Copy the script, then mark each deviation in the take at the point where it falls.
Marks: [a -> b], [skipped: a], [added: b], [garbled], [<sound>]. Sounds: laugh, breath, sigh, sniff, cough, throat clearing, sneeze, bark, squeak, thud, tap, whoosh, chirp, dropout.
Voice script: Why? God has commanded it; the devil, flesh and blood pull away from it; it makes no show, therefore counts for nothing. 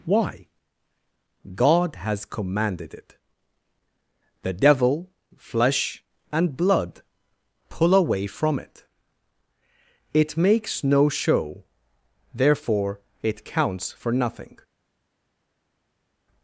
Why? God has commanded it; the devil, flesh and blood pull away from it; it makes no show, therefore [added: it] counts for nothing.